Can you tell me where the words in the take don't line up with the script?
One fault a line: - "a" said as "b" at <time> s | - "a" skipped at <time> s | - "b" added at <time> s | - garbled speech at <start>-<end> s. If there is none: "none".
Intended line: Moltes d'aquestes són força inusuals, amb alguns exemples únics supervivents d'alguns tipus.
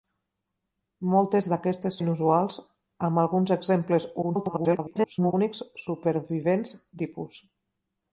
- "són força" skipped at 2.0 s
- garbled speech at 4.2-5.3 s
- "d'alguns" skipped at 6.8 s